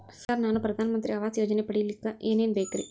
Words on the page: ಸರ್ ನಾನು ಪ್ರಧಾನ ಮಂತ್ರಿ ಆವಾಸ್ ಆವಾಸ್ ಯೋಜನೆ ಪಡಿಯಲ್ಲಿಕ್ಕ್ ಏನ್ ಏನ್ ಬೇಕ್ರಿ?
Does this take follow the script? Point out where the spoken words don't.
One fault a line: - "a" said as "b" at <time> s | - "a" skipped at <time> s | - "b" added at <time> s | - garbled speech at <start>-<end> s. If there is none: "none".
- "ಆವಾಸ್" skipped at 1.4 s